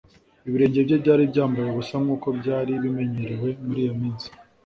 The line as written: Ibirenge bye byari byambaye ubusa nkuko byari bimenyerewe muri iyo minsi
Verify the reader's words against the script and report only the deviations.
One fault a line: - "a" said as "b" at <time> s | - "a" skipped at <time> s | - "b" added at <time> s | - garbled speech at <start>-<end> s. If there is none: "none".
none